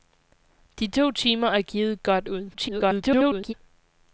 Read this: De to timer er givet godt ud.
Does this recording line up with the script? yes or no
no